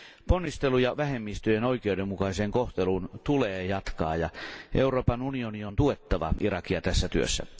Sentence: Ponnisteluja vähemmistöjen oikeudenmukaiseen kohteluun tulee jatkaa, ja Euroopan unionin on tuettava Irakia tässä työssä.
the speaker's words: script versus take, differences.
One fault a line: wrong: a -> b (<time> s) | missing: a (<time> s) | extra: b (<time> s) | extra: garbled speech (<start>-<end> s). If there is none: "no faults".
no faults